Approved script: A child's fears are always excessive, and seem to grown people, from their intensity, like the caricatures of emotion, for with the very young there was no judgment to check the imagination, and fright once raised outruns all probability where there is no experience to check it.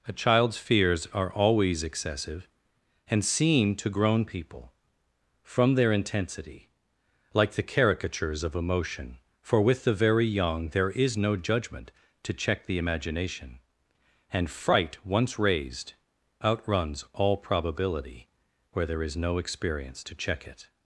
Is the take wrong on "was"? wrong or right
wrong